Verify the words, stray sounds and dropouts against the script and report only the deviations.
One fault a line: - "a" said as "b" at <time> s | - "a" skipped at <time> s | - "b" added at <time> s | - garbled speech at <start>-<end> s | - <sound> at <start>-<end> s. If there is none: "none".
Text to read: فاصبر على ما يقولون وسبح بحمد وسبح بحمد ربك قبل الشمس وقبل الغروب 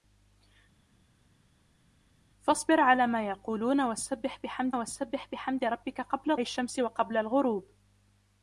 none